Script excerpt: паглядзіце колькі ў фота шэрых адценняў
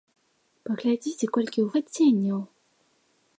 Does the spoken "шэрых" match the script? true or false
false